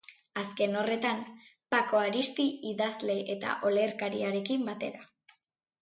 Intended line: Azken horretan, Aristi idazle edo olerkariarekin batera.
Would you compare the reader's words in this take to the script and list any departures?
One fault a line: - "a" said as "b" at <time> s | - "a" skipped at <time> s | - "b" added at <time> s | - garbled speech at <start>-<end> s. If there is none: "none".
- "Pako" added at 1.8 s
- "edo" said as "eta" at 3.4 s